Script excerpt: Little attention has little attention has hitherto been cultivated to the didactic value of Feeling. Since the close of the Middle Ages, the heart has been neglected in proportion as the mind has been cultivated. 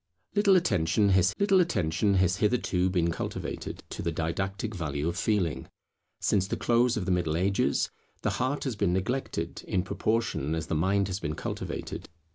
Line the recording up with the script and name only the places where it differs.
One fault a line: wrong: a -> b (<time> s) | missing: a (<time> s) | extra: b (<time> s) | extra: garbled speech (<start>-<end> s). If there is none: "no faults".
no faults